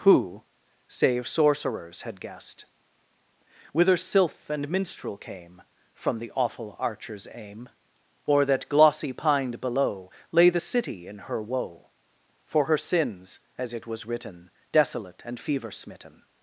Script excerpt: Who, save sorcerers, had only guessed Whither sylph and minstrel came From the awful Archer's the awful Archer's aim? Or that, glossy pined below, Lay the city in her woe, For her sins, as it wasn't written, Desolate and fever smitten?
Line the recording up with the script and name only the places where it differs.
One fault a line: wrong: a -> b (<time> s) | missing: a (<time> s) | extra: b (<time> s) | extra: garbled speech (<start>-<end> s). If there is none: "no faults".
missing: only (2.2 s)
missing: the awful Archer's (7.3 s)
wrong: wasn't -> was (13.9 s)